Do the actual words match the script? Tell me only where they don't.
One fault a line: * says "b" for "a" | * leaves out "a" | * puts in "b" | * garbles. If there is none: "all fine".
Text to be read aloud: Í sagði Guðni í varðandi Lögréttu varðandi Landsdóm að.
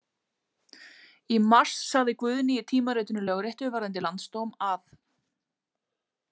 * puts in "mars"
* says "tímaritinu" for "varðandi"